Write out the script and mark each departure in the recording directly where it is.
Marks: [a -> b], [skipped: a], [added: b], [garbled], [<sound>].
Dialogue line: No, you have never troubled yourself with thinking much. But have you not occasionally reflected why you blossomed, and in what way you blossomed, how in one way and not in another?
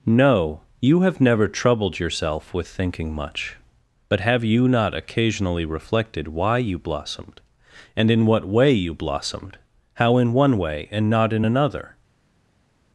No, you have never troubled yourself with thinking much. But have you not occasionally reflected why you blossomed, and in what way you blossomed, how in one way and not in another?